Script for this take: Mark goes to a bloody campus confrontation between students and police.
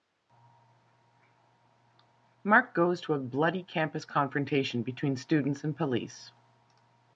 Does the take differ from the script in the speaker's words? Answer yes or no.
no